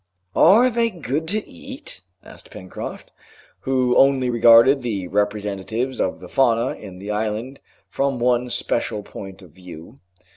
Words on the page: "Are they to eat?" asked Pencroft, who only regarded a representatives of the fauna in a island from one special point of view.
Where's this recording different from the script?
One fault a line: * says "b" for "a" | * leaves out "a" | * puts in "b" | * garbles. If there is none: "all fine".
* puts in "good"
* says "the" for "a"
* says "the" for "a"